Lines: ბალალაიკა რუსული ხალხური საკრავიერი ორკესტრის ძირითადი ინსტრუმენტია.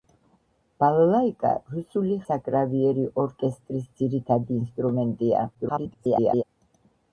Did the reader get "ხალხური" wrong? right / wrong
wrong